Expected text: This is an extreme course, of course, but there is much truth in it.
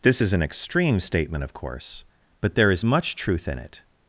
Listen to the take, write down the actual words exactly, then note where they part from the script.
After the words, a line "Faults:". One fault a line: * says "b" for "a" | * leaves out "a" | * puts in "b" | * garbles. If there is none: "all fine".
This is an extreme statement, of course, but there is much truth in it.
Faults:
* says "statement" for "course"